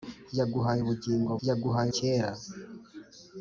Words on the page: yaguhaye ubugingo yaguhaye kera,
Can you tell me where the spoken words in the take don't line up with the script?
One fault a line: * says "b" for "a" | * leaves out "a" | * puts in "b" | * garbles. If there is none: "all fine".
all fine